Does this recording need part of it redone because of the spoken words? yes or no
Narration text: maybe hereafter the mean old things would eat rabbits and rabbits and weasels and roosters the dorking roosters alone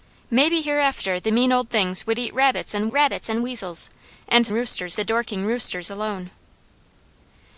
no